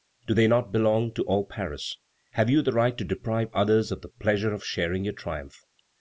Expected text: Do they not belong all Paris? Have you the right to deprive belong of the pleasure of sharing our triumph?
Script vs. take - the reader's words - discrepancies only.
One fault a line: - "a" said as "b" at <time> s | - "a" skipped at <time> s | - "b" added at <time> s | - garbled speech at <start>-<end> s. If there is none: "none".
- "to" added at 1.1 s
- "belong" said as "others" at 3.5 s
- "our" said as "your" at 5.0 s